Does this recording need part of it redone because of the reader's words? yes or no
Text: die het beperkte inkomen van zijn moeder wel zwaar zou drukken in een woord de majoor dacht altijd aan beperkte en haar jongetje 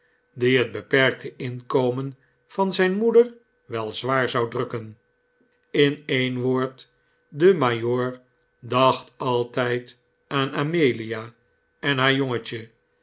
yes